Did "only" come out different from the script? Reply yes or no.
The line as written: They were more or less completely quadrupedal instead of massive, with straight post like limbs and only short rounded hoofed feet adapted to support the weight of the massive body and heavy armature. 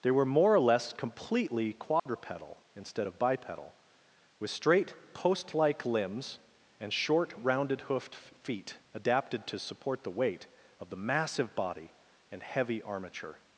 yes